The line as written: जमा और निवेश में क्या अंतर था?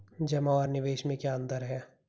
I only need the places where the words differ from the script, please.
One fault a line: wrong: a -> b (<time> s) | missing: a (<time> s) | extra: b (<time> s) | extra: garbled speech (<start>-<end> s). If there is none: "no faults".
wrong: था -> है (1.6 s)